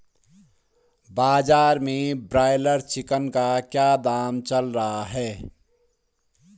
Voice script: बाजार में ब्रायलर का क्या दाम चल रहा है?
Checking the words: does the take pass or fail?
fail